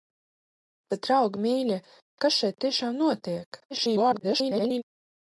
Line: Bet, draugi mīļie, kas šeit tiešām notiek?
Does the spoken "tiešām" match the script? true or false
true